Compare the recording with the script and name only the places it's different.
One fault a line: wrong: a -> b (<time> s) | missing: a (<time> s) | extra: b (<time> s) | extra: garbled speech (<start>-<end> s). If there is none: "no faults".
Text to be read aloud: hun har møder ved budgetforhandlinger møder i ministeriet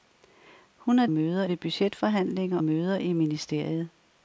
no faults